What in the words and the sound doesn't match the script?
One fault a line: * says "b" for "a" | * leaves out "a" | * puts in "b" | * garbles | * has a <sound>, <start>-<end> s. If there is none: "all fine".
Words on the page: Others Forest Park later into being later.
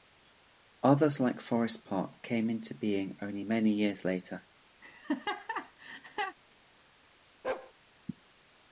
* puts in "like"
* says "came" for "later"
* puts in "only many years"
* has a laugh, 4.8-6.4 s
* has a bark, 7.4-7.7 s